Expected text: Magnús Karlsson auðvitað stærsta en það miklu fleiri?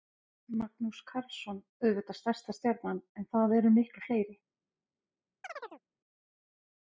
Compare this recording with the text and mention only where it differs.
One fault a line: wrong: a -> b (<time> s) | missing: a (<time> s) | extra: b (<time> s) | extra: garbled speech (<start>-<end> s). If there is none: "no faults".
extra: stjarnan (2.6 s)
extra: eru (3.6 s)